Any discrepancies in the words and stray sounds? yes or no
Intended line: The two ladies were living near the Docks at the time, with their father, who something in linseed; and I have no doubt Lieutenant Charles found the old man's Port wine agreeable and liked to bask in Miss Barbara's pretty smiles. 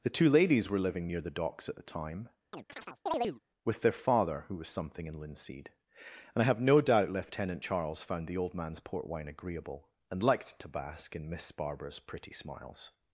yes